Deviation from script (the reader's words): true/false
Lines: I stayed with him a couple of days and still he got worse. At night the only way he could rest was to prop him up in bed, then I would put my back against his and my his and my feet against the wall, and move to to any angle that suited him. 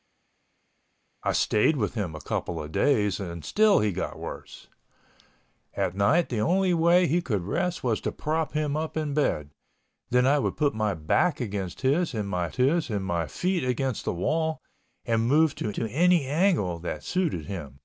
false